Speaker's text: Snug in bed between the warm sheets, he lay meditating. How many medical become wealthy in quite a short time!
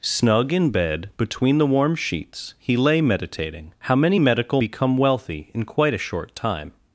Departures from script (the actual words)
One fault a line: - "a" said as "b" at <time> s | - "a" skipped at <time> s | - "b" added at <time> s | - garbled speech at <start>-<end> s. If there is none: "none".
none